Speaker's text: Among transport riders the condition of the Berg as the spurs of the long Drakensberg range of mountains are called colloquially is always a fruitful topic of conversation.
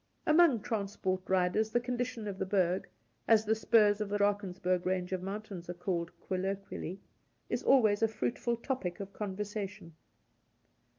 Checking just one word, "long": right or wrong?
wrong